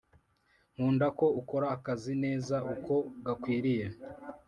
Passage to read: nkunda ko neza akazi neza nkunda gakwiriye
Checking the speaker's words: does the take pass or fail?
fail